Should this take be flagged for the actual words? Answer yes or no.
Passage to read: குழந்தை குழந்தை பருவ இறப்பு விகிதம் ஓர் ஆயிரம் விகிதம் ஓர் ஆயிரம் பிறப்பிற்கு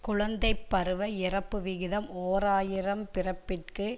yes